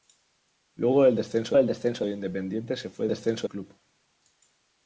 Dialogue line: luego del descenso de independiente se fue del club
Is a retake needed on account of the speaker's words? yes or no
yes